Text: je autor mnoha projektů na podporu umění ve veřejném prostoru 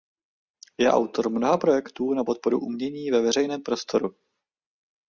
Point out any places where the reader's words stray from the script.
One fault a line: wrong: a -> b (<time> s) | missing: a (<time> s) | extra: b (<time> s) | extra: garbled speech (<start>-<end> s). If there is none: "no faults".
no faults